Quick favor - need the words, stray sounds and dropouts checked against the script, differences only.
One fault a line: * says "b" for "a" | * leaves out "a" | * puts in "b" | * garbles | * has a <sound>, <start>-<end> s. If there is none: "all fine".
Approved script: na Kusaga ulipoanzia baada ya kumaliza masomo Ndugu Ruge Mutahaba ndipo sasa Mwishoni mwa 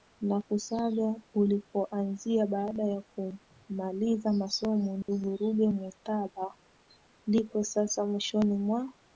* has a dropout, 5.0-5.1 s